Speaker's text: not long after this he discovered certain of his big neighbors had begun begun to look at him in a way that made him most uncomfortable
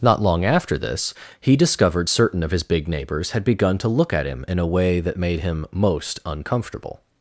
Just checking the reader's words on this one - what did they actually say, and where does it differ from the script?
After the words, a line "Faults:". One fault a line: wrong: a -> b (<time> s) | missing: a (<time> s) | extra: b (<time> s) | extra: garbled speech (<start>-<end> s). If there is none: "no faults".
not long after this he discovered certain of his big neighbors had begun to look at him in a way that made him most uncomfortable
Faults:
missing: begun (3.8 s)